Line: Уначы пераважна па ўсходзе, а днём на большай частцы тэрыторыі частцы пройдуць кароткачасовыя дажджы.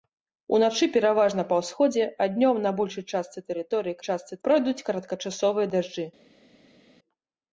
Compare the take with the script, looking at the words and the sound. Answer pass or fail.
pass